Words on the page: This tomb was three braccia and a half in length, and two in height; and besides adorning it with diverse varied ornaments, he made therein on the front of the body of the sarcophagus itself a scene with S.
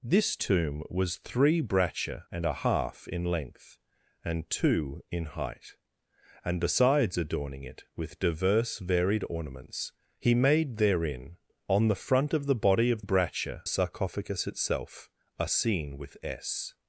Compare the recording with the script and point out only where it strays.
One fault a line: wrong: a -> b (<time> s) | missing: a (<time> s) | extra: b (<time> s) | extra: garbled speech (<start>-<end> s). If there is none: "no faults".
wrong: the -> braccia (13.0 s)